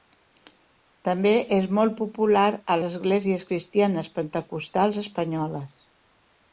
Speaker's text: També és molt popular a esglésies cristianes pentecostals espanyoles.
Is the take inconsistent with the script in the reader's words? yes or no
no